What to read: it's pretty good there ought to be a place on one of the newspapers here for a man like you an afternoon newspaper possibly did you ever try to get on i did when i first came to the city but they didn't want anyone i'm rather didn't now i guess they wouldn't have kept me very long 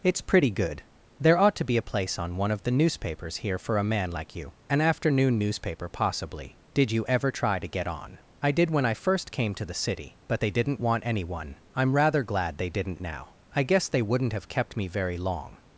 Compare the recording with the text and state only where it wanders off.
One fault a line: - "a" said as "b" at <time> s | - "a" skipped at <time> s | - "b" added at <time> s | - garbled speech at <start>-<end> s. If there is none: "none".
- "glad they" added at 12.2 s